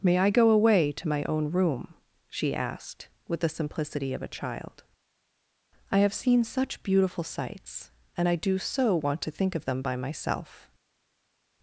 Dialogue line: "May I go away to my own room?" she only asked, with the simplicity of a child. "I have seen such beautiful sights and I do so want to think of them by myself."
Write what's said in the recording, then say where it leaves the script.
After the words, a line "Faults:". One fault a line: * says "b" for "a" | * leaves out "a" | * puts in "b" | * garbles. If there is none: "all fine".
"May I go away to my own room?" she asked, with the simplicity of a child. "I have seen such beautiful sights and I do so want to think of them by myself."
Faults:
* leaves out "only"